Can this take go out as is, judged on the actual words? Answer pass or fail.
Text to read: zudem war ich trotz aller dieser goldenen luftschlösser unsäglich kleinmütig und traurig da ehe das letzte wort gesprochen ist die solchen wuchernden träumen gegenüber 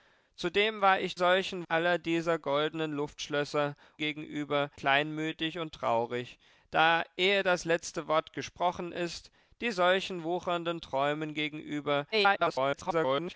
fail